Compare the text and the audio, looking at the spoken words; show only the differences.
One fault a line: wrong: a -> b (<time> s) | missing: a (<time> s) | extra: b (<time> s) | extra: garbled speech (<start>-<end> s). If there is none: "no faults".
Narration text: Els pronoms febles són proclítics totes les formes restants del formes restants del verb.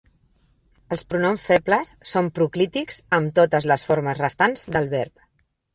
extra: amb (3.2 s)
missing: formes restants del (4.9 s)